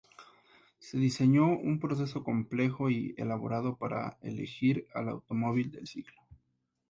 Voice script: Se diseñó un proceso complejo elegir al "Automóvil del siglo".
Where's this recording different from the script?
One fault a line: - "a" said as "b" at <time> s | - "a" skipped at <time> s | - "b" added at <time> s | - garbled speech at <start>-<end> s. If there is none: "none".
- "y elaborado para" added at 2.9 s